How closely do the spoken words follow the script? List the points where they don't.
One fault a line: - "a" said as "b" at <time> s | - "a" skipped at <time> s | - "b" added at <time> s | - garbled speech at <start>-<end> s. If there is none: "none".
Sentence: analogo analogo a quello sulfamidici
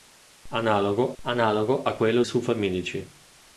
none